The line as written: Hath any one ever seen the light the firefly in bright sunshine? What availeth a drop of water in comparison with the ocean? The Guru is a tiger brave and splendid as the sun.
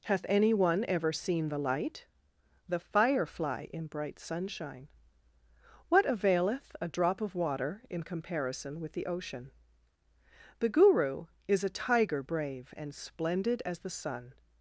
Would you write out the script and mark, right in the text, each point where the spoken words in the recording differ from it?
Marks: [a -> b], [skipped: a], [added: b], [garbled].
Hath any one ever seen the light the firefly in bright sunshine? What availeth a drop of water in comparison with the ocean? The Guru is a tiger brave and splendid as the sun.